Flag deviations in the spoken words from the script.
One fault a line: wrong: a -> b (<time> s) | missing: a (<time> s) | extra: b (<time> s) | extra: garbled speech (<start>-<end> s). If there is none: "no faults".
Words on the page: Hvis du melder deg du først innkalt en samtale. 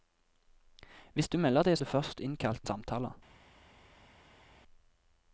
no faults